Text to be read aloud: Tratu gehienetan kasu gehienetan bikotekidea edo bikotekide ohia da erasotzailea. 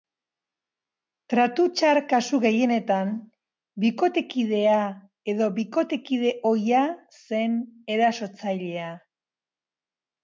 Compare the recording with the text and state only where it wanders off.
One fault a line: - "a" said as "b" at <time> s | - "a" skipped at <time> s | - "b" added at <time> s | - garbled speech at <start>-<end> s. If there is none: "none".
- "gehienetan" said as "txar" at 1.8 s
- "da" said as "zen" at 7.2 s